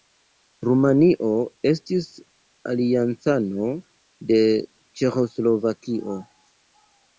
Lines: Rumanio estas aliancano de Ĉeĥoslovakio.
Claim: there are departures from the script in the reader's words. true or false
true